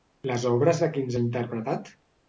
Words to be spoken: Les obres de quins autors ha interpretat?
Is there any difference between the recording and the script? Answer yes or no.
yes